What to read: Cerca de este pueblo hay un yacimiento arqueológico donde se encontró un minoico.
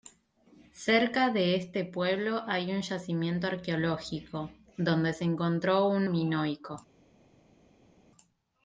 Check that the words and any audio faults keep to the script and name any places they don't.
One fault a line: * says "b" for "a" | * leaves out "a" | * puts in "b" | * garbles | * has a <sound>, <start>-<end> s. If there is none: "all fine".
all fine